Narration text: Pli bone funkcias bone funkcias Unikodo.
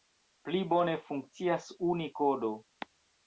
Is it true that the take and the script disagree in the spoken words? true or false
true